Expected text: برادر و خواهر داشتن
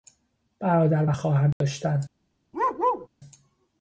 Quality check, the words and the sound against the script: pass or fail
fail